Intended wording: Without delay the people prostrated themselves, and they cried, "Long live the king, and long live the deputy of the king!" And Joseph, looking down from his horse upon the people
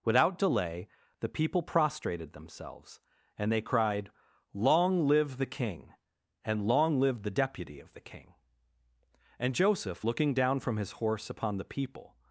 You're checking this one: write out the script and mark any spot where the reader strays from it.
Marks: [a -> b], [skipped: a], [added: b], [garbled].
Without delay the people prostrated themselves, and they cried, "Long live the king, and long live the deputy of the king!" And Joseph, looking down from his horse upon the people